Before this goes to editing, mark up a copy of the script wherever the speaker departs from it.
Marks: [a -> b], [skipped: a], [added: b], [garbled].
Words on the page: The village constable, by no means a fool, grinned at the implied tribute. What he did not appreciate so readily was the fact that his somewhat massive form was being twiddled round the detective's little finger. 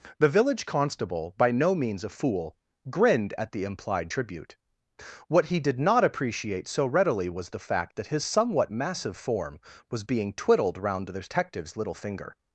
The village constable, by no means a fool, grinned at the implied tribute. What he did not appreciate so readily was the fact that his somewhat massive form was being twiddled round the detective's little finger.